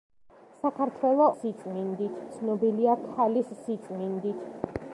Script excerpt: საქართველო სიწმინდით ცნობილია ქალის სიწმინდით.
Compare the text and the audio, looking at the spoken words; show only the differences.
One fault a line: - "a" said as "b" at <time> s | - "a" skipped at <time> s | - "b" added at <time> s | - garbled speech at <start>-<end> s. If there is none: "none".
none